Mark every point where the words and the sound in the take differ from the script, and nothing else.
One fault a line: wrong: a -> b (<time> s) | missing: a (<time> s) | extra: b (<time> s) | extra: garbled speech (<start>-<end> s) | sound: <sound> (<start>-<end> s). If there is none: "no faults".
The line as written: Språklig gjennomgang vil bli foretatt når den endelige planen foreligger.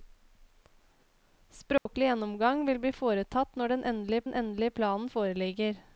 sound: dropout (1.8-1.9 s)
extra: den endelige (4.2 s)